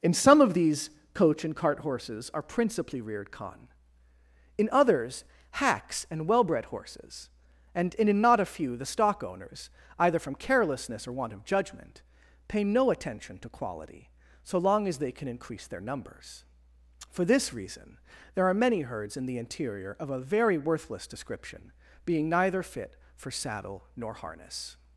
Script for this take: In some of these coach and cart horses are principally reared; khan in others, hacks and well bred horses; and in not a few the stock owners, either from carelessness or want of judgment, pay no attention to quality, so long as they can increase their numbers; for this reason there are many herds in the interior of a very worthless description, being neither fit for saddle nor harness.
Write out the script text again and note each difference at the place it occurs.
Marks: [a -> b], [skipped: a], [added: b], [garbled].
In some of these coach and cart horses are principally reared; khan in others, hacks and well bred horses; and in not a few the stock owners, either from carelessness or want of judgment, pay no attention to quality, so long as they can increase their numbers; for this reason there are many herds in the interior of a very worthless description, being neither fit for saddle nor harness.